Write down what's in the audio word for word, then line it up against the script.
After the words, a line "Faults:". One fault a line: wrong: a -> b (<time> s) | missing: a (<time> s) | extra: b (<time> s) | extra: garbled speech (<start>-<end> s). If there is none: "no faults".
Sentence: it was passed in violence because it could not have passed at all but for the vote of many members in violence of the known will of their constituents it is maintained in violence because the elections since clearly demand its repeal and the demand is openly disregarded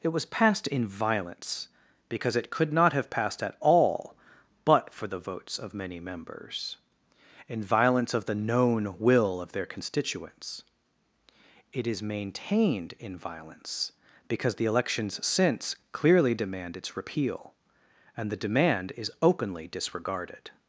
it was passed in violence because it could not have passed at all but for the votes of many members in violence of the known will of their constituents it is maintained in violence because the elections since clearly demand its repeal and the demand is openly disregarded
Faults:
wrong: vote -> votes (5.2 s)